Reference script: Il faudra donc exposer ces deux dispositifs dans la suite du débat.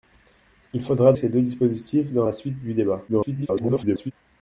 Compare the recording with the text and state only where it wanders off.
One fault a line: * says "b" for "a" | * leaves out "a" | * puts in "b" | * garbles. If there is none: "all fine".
* leaves out "donc exposer"
* garbles